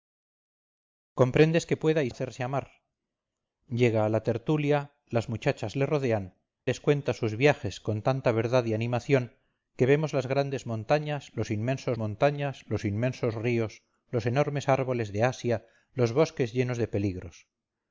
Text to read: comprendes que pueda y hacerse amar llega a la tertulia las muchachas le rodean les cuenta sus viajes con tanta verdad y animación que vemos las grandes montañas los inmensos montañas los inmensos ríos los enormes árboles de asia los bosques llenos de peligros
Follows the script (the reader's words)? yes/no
yes